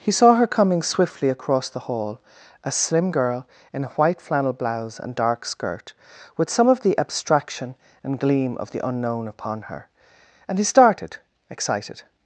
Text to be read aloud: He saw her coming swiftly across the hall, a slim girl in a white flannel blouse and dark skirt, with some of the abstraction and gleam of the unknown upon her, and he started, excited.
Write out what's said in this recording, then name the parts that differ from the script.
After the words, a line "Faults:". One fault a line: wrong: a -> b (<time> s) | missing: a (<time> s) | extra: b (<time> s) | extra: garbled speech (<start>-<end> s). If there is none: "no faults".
He saw her coming swiftly across the hall, a slim girl in a white flannel blouse and dark skirt, with some of the abstraction and gleam of the unknown upon her, and he started, excited.
Faults:
no faults